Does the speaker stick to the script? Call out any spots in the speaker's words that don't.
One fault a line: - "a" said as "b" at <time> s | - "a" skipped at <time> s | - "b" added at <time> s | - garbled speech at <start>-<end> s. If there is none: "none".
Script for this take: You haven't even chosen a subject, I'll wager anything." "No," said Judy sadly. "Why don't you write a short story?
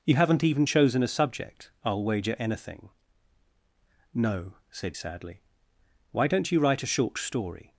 - "Judy" skipped at 4.9 s